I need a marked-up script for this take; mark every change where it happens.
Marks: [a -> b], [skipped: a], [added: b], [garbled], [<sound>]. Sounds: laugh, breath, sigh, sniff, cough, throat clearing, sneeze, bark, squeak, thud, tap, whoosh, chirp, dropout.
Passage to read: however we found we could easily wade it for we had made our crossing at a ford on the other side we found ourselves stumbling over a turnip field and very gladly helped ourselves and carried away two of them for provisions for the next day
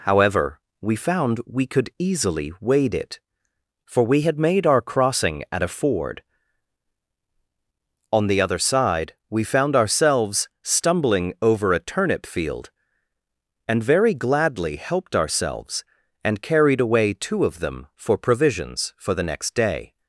however we found we could easily wade it for we had made our crossing at a ford on the other side we found ourselves stumbling over a turnip field and very gladly helped ourselves and carried away two of them for provisions for the next day